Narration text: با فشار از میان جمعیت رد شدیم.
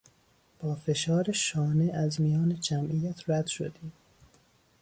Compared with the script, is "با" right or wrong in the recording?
right